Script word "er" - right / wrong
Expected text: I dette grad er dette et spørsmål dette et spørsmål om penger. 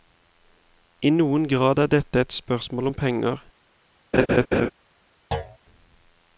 right